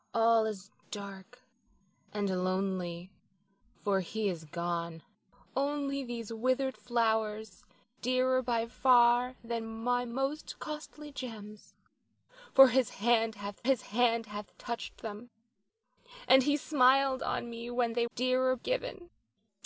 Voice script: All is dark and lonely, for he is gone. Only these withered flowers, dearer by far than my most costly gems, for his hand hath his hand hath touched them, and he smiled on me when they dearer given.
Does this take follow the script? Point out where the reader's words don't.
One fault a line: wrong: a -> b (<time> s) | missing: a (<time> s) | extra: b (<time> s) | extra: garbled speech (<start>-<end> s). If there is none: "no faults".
no faults